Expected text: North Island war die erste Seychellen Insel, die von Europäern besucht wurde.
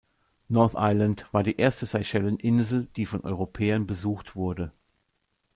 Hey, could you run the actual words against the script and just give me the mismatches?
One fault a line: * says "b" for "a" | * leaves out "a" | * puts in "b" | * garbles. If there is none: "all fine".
all fine